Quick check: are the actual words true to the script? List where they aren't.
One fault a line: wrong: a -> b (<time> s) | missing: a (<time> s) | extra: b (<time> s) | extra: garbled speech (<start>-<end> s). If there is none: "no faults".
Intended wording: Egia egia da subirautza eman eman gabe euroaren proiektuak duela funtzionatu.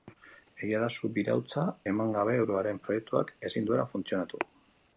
missing: egia (0.8 s)
missing: eman (2.1 s)
extra: ezin (3.5 s)